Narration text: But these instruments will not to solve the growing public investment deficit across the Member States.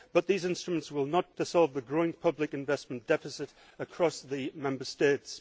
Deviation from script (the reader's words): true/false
false